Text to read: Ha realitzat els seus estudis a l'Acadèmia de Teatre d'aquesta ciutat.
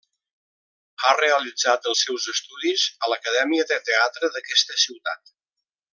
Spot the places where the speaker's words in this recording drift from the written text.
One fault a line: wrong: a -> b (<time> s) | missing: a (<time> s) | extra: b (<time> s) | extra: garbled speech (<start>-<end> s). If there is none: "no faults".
no faults